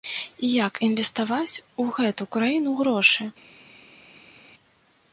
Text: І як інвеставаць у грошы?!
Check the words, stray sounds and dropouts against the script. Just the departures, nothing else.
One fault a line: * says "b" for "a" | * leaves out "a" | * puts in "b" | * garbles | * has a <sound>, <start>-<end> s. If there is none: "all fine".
* puts in "гэту краіну"